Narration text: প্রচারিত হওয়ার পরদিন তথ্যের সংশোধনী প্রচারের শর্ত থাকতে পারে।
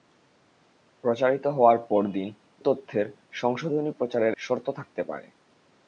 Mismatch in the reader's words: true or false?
false